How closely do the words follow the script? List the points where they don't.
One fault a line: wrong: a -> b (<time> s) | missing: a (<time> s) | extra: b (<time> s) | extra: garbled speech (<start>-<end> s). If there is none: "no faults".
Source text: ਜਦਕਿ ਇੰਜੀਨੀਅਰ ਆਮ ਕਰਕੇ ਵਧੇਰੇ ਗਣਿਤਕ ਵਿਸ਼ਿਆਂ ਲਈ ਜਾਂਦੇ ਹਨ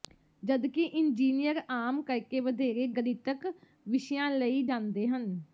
no faults